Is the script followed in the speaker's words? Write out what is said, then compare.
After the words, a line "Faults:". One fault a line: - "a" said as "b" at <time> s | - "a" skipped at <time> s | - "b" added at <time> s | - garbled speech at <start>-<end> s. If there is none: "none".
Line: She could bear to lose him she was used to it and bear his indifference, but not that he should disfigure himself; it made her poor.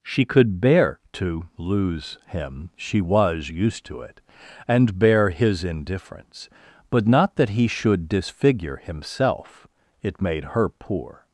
She could bear to lose him she was used to it and bear his indifference, but not that he should disfigure himself; it made her poor.
Faults:
none